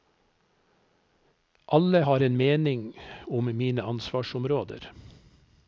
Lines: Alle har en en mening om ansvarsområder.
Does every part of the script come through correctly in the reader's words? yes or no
no